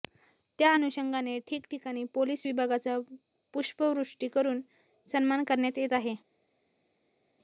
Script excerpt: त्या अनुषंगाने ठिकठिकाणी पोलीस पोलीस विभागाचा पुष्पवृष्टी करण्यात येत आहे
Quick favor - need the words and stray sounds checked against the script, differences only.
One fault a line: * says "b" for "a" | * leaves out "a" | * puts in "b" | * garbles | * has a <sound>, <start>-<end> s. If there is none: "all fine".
* leaves out "पोलीस"
* puts in "करून सन्मान"